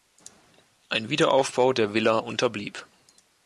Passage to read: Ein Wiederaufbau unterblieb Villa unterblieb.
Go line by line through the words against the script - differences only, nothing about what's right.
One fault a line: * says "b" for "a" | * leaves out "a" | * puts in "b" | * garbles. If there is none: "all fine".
* says "der" for "unterblieb"